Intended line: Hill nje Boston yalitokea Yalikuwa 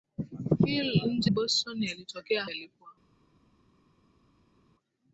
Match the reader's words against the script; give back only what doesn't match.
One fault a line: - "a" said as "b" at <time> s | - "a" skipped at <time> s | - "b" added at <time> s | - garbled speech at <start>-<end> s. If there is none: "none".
none